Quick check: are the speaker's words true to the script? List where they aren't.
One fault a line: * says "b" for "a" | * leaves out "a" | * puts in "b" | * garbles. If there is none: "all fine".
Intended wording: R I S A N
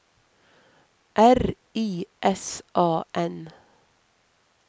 all fine